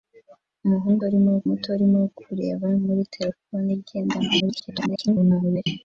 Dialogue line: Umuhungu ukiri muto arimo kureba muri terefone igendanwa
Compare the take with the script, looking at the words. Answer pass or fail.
fail